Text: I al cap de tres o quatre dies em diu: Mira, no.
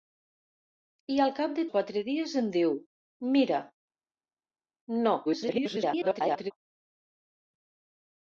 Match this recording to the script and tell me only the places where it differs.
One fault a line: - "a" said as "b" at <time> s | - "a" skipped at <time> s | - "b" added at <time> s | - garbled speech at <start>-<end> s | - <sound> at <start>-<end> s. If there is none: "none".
- "tres" skipped at 1.6 s
- garbled speech at 5.2-6.5 s